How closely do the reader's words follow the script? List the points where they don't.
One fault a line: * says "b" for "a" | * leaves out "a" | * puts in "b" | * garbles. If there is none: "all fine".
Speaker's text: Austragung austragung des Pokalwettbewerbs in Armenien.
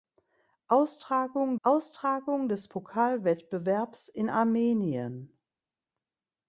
all fine